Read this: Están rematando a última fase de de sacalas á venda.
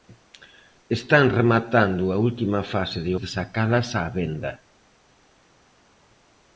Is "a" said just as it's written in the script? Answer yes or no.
yes